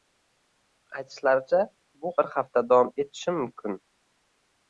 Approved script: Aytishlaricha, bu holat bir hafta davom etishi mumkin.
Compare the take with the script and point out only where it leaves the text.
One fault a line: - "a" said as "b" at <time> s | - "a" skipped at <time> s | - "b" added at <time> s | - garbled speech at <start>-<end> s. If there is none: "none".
- "holat" skipped at 2.1 s